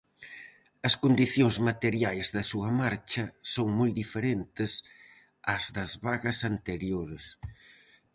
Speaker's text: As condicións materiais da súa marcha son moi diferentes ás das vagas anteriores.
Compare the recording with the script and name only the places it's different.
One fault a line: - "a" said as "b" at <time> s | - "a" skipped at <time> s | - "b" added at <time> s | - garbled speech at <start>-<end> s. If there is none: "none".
none